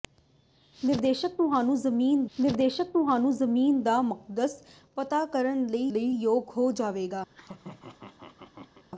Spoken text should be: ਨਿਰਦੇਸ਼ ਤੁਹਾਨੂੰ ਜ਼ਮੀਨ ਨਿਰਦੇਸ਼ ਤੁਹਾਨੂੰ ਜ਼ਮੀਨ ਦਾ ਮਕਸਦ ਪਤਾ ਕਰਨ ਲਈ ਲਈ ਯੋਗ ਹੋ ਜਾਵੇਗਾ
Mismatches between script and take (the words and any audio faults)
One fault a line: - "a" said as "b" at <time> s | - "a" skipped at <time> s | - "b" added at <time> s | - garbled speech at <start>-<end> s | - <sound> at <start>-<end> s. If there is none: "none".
- laugh at 7.3-8.8 s